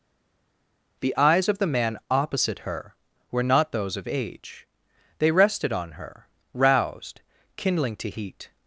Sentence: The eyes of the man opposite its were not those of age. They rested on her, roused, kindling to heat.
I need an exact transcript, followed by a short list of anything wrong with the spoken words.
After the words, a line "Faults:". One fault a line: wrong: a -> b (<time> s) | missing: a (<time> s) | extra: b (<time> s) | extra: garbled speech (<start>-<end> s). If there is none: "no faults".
The eyes of the man opposite her were not those of age. They rested on her, roused, kindling to heat.
Faults:
wrong: its -> her (2.6 s)